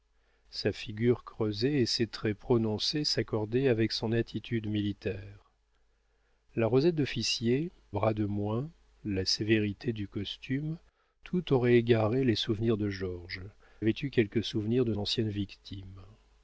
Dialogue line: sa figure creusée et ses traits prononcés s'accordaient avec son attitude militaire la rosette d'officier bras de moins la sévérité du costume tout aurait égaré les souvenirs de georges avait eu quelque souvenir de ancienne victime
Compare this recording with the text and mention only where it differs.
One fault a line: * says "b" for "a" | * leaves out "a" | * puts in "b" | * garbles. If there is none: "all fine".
all fine